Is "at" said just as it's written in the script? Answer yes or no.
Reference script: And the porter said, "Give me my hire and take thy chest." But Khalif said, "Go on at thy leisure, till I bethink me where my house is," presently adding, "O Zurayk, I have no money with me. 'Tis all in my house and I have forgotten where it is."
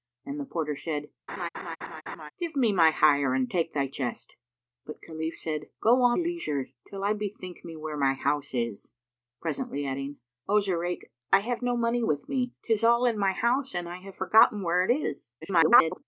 no